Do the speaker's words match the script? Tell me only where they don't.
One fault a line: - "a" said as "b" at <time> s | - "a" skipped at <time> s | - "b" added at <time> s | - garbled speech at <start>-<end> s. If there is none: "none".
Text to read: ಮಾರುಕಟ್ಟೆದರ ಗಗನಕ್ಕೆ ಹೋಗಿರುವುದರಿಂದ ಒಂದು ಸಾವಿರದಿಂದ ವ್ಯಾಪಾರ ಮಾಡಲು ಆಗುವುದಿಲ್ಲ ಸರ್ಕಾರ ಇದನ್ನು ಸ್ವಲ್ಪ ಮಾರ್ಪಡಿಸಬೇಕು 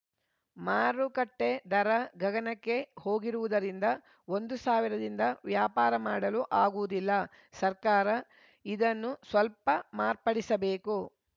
none